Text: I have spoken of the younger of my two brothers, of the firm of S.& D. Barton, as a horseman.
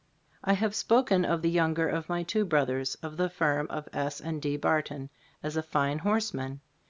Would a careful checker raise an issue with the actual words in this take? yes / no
yes